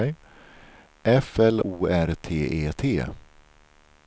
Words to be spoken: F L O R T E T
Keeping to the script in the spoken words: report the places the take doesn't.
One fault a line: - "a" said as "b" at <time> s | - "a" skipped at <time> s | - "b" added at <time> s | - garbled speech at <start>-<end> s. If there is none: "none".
none